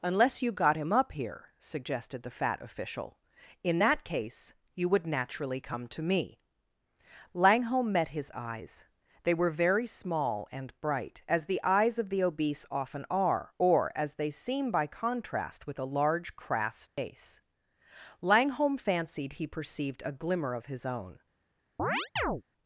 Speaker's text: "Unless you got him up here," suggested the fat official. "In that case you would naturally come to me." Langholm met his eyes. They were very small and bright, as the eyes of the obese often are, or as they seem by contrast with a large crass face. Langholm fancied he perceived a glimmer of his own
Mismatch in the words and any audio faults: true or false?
true